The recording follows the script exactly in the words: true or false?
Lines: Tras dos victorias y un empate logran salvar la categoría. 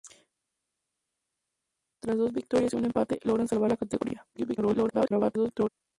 false